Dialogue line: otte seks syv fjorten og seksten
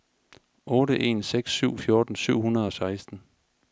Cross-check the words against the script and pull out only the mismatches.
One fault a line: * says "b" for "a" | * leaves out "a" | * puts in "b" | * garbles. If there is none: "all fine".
* puts in "en"
* puts in "syv hundrede"